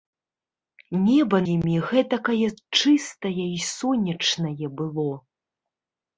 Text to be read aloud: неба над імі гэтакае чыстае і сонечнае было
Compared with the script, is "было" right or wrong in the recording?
right